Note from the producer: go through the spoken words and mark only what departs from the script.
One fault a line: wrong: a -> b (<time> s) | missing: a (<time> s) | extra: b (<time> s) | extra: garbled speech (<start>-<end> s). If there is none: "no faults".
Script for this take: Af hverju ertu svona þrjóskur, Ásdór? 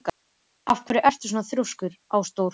no faults